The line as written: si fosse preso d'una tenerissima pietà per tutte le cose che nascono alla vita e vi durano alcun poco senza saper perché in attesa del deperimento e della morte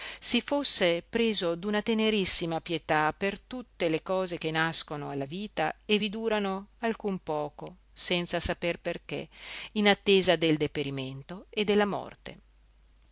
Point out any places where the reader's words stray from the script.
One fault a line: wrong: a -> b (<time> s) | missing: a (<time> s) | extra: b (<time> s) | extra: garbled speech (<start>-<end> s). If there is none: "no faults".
no faults